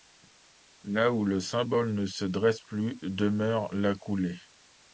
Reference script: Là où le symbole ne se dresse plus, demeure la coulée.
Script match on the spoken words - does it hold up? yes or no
yes